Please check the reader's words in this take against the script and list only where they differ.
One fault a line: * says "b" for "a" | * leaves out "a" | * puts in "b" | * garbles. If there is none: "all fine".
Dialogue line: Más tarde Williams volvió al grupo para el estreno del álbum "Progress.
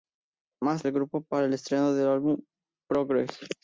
* leaves out "tarde Williams volvió"